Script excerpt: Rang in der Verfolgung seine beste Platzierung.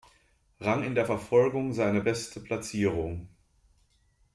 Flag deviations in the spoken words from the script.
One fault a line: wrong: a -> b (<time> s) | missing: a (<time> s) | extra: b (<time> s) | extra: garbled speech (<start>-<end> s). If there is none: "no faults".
no faults